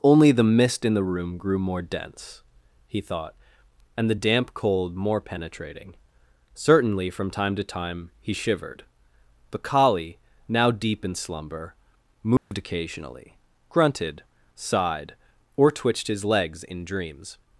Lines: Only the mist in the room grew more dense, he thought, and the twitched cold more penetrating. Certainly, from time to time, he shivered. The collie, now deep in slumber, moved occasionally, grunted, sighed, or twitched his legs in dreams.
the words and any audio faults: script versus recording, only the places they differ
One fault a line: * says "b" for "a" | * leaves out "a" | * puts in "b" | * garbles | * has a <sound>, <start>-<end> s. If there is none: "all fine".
* says "damp" for "twitched"
* has a dropout, 12.4-12.5 s